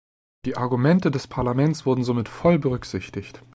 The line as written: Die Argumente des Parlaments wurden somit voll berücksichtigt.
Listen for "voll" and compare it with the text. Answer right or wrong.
right